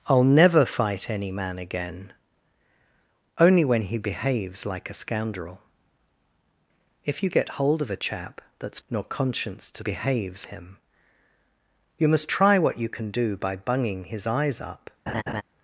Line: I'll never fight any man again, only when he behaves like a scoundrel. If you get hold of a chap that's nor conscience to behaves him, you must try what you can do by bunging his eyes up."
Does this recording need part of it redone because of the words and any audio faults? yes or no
yes